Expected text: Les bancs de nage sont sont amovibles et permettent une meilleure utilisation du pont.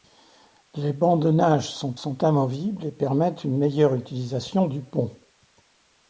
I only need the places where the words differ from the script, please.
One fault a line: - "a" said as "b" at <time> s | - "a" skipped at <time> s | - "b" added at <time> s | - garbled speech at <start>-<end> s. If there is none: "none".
none